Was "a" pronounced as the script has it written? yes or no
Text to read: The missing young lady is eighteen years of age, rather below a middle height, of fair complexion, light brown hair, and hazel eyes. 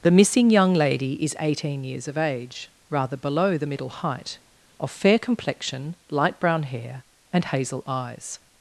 no